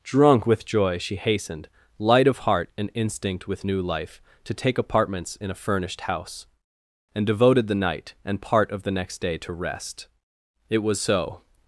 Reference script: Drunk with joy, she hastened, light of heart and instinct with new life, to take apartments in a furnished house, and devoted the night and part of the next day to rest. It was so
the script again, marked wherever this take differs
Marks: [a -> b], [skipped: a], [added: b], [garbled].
Drunk with joy, she hastened, light of heart and instinct with new life, to take apartments in a furnished house, and devoted the night and part of the next day to rest. It was so